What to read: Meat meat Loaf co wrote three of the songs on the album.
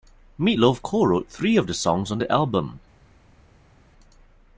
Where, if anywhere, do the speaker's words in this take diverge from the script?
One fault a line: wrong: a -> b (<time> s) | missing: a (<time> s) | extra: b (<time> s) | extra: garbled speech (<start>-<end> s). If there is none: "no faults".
missing: meat (0.6 s)